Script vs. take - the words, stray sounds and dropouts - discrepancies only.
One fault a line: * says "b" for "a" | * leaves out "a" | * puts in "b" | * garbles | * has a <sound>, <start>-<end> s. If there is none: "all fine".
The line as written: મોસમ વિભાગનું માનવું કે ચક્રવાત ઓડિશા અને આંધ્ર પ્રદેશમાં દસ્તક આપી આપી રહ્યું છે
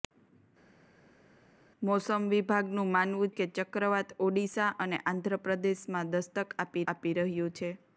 all fine